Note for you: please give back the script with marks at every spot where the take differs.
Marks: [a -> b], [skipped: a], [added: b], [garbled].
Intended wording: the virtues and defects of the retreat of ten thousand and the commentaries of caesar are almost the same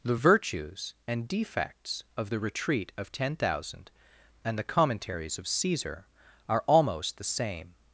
the virtues and defects of the retreat of ten thousand and the commentaries of caesar are almost the same